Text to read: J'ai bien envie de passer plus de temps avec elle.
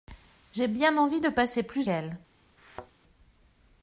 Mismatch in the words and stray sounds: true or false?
true